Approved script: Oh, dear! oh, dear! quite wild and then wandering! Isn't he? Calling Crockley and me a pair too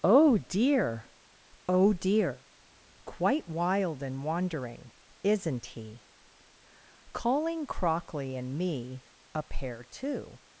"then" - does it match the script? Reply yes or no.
no